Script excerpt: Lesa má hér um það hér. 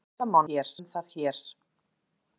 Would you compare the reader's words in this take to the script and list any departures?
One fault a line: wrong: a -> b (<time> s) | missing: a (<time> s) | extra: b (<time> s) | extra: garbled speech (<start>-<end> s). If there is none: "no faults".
no faults